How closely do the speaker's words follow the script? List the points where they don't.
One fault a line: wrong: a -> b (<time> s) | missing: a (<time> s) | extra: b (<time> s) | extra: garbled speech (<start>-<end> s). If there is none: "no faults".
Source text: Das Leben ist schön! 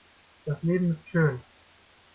no faults